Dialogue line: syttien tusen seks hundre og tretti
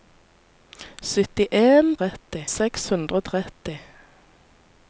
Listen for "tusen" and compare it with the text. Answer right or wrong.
wrong